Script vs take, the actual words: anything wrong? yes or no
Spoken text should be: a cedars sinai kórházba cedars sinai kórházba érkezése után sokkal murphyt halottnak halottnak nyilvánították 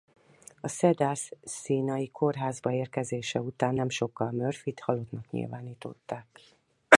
yes